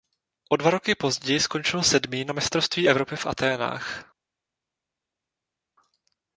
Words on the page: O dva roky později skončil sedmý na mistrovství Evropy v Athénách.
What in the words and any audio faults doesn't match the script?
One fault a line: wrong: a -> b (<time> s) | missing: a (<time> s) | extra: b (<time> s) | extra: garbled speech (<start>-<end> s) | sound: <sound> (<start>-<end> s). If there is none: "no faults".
no faults